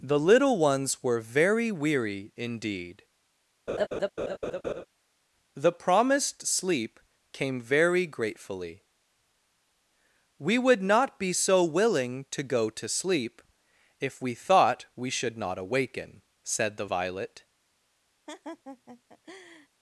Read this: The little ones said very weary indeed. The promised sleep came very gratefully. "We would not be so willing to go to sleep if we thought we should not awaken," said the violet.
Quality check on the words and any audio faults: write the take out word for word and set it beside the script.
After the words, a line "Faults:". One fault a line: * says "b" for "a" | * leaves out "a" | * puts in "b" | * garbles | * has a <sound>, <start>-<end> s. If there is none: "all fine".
The little ones were very weary indeed. The promised sleep came very gratefully. "We would not be so willing to go to sleep if we thought we should not awaken," said the violet.
Faults:
* says "were" for "said"
* has a laugh, 3.7-4.9 s
* has a laugh, 18.3-19.7 s